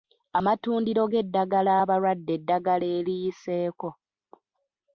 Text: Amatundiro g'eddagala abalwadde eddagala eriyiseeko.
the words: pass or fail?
pass